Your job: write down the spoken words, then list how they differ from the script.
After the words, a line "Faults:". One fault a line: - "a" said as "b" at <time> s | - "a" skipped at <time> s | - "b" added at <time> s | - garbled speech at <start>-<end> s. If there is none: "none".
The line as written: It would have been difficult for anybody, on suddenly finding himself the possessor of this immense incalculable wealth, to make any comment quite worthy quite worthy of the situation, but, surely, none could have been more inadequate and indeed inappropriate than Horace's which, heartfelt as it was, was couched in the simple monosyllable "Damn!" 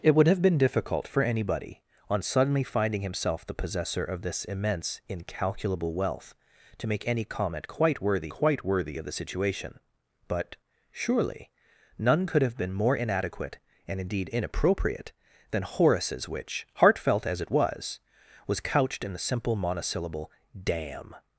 It would have been difficult for anybody, on suddenly finding himself the possessor of this immense incalculable wealth, to make any comment quite worthy quite worthy of the situation, but, surely, none could have been more inadequate and indeed inappropriate than Horace's which, heartfelt as it was, was couched in the simple monosyllable "Damn!"
Faults:
none